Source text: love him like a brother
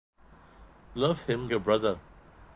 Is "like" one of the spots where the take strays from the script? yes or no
yes